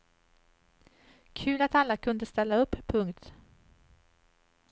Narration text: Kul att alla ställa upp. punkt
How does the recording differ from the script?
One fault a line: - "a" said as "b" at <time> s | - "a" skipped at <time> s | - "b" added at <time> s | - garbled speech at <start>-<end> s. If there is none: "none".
- "kunde" added at 2.0 s